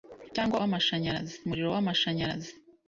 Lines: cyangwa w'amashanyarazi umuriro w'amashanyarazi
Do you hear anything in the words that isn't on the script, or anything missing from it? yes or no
no